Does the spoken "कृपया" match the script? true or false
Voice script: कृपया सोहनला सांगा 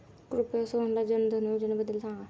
true